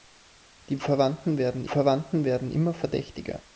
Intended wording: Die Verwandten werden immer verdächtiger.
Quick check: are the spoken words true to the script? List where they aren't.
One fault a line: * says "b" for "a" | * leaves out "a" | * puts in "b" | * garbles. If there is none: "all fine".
* puts in "Verwandten werden"